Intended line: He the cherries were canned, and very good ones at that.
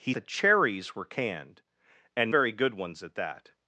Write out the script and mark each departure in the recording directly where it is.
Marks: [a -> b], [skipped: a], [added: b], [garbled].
He the cherries were canned, and very good ones at that.